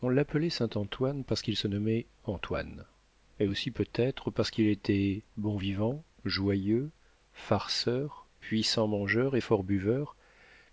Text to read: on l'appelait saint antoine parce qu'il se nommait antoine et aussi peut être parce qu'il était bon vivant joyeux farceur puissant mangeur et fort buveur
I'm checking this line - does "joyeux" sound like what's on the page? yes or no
yes